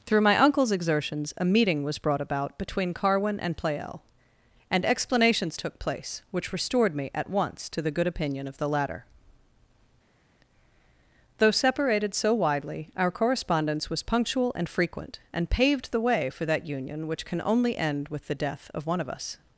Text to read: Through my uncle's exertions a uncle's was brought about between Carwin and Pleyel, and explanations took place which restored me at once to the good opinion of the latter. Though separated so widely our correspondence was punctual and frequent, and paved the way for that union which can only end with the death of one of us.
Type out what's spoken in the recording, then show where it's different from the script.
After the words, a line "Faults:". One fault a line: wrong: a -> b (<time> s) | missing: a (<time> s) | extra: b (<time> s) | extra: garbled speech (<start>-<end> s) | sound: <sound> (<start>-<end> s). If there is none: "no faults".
Through my uncle's exertions a meeting was brought about between Carwin and Pleyel, and explanations took place which restored me at once to the good opinion of the latter. Though separated so widely our correspondence was punctual and frequent, and paved the way for that union which can only end with the death of one of us.
Faults:
wrong: uncle's -> meeting (1.4 s)